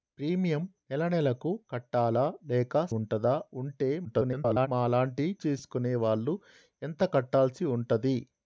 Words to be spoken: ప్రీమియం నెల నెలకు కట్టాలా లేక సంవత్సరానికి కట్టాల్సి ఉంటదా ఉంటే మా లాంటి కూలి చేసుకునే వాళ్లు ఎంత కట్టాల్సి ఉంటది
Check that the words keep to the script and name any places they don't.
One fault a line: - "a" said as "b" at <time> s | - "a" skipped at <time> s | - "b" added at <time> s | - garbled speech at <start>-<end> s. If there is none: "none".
- "సంవత్సరానికి కట్టాల్సి" skipped at 2.9 s
- garbled speech at 4.0-4.7 s
- "కూలి" skipped at 5.3 s